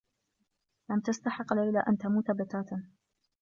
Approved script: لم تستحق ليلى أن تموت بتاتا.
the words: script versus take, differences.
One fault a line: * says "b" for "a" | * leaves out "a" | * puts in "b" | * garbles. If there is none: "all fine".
all fine